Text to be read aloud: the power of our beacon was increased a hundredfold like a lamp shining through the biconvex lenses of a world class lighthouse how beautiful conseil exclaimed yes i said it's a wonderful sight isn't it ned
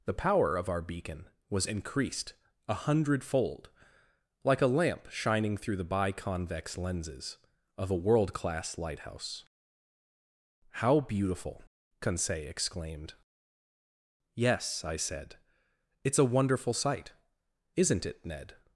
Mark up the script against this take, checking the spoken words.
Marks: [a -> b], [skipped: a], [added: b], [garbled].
the power of our beacon was increased a hundredfold like a lamp shining through the biconvex lenses of a world class lighthouse how beautiful conseil exclaimed yes i said it's a wonderful sight isn't it ned